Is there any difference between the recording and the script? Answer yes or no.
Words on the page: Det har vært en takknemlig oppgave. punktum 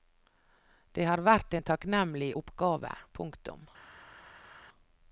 no